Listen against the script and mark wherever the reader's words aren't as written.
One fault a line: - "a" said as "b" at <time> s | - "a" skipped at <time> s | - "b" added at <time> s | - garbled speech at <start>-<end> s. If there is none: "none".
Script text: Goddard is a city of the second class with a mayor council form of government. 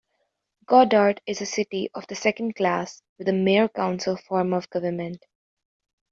none